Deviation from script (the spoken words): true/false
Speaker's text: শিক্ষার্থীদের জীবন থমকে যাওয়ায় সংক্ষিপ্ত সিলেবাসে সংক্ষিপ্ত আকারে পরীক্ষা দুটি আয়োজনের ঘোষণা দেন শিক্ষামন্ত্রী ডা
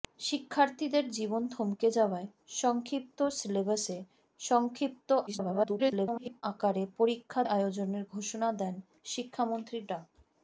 true